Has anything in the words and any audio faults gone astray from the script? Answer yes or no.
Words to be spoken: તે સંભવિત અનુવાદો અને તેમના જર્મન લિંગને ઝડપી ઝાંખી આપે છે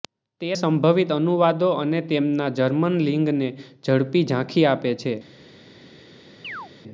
yes